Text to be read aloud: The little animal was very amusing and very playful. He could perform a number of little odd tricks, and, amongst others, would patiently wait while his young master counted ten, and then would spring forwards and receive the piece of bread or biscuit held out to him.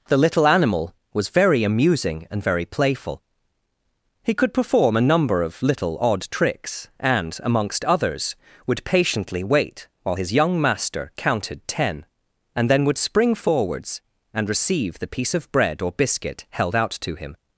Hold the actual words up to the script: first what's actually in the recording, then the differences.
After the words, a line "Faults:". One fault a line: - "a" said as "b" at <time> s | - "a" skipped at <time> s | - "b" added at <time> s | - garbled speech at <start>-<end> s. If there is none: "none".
The little animal was very amusing and very playful. He could perform a number of little odd tricks, and, amongst others, would patiently wait while his young master counted ten, and then would spring forwards and receive the piece of bread or biscuit held out to him.
Faults:
none